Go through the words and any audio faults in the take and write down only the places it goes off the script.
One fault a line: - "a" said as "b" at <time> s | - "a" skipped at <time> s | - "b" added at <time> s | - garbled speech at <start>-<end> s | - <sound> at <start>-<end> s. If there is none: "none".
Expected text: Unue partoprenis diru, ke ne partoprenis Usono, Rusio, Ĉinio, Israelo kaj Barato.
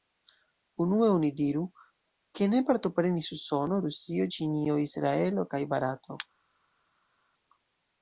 - "partoprenis" said as "oni" at 1.1 s